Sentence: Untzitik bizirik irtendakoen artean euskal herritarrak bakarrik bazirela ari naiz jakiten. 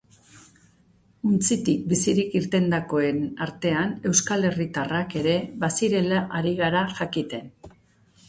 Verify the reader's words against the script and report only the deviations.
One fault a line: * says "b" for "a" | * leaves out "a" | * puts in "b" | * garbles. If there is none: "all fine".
* says "ere" for "bakarrik"
* says "gara" for "naiz"